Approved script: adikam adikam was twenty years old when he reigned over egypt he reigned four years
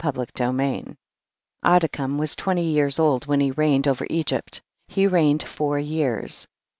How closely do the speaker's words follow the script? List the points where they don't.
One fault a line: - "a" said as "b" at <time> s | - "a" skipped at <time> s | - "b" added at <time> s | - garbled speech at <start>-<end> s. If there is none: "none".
- "adikam" skipped at 2.2 s